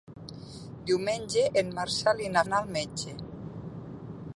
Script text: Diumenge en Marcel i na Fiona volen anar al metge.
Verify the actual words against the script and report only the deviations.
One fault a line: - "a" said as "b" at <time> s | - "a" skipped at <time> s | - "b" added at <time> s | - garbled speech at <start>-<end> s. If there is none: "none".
- "Fiona volen" skipped at 2.5 s